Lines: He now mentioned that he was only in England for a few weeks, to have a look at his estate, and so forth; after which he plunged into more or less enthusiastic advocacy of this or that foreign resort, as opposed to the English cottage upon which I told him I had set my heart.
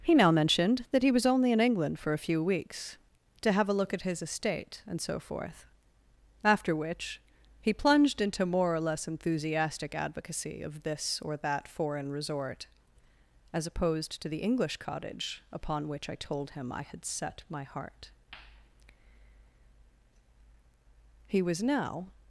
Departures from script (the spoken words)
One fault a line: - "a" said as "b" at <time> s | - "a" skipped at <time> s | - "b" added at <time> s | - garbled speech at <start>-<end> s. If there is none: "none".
- "He was now" added at 21.3 s